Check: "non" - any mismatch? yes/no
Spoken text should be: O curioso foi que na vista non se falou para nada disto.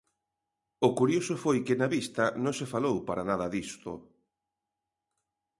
no